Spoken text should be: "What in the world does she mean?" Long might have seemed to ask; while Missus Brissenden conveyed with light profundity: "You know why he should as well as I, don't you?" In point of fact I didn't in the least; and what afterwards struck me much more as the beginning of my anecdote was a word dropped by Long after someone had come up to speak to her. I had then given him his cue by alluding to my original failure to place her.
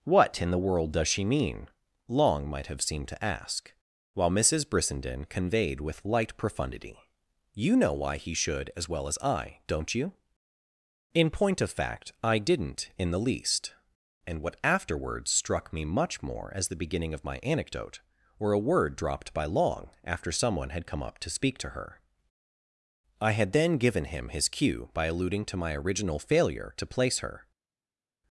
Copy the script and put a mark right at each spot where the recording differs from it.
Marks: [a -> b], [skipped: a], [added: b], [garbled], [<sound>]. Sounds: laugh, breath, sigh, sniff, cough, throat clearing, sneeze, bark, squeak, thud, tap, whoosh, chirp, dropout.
"What in the world does she mean?" Long might have seemed to ask; while Missus Brissenden conveyed with light profundity: "You know why he should as well as I, don't you?" In point of fact I didn't in the least; and what afterwards struck me much more as the beginning of my anecdote [was -> were] a word dropped by Long after someone had come up to speak to her. I had then given him his cue by alluding to my original failure to place her.